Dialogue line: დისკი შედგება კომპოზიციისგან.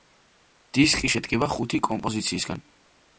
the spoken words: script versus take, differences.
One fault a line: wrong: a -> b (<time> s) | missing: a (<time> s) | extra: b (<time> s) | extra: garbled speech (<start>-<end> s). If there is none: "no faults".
extra: ხუთი (1.5 s)